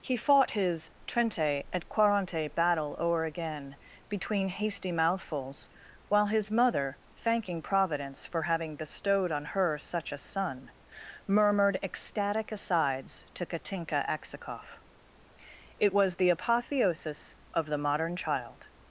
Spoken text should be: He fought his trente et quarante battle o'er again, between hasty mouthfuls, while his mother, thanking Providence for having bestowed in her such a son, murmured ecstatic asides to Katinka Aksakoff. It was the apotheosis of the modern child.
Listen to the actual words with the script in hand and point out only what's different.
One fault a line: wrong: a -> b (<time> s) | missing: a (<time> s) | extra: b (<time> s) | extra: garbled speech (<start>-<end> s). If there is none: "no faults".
wrong: in -> on (9.3 s)